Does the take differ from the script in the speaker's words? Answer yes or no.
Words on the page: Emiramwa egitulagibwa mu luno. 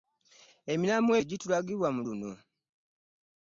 no